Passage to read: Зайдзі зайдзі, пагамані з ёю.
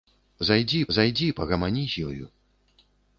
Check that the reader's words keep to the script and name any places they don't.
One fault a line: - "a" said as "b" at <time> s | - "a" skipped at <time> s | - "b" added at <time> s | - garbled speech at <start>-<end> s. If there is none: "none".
none